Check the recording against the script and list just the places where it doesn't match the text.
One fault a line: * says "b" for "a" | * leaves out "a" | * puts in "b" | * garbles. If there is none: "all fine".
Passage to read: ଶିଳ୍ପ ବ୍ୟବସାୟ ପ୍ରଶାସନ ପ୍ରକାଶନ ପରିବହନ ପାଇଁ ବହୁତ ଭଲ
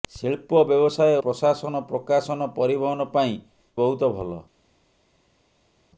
all fine